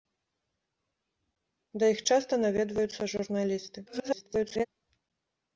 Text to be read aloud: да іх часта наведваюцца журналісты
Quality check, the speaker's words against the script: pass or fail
fail